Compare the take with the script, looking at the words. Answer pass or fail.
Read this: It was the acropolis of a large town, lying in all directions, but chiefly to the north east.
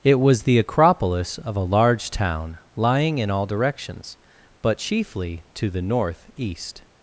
pass